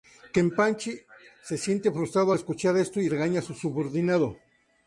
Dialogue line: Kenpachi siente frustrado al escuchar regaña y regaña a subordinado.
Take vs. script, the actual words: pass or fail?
fail